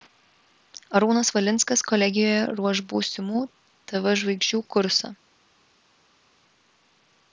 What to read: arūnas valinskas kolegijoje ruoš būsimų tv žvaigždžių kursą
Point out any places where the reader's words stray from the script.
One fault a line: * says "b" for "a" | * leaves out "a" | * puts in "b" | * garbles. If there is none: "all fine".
all fine